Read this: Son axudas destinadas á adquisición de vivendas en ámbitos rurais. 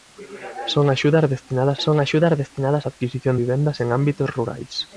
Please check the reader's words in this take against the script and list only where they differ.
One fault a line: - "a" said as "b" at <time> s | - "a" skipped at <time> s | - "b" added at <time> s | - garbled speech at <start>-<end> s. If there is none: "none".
- "son axudas destinadas" added at 1.8 s
- "de" skipped at 3.4 s